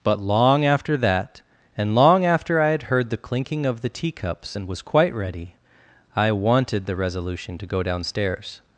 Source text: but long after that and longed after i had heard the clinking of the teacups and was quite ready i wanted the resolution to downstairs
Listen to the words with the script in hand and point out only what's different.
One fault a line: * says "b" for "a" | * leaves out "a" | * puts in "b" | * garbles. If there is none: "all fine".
* says "long" for "longed"
* puts in "go"